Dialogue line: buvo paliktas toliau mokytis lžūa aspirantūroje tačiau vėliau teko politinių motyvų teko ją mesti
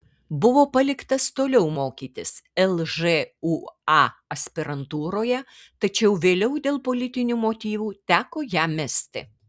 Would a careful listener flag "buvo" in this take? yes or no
no